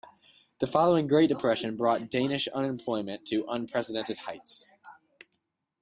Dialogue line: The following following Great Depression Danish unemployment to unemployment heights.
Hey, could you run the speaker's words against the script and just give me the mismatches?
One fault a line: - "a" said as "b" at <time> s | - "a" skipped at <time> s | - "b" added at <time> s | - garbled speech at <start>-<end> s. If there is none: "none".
- "following" skipped at 1.1 s
- "brought" added at 1.8 s
- "unemployment" said as "unprecedented" at 3.5 s